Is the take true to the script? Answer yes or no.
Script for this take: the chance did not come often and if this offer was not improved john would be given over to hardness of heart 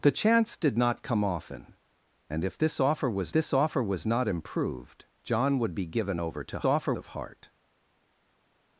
no